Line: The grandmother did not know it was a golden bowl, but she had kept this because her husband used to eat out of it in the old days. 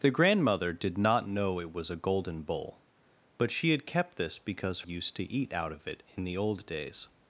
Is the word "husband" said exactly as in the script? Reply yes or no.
no